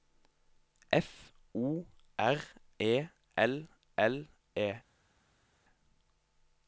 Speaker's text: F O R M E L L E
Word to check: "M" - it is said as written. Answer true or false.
false